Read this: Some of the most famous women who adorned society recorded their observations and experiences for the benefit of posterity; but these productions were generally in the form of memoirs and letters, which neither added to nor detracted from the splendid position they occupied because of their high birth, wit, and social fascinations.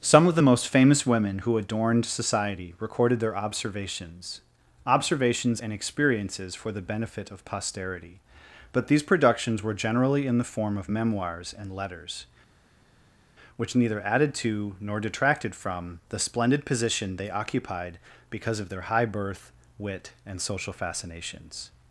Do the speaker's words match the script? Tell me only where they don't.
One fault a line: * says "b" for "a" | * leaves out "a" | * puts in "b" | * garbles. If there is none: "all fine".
* puts in "observations"